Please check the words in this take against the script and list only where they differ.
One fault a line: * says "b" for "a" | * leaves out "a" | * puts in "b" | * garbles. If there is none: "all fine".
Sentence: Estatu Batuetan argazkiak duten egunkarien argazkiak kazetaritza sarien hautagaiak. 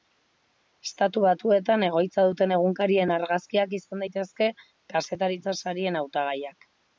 * says "egoitza" for "argazkiak"
* puts in "izan daitezke"